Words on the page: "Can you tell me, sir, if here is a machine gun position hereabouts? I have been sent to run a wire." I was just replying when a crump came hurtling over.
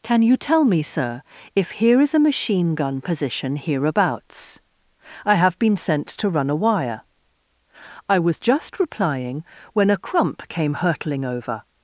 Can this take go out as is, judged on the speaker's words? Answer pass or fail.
pass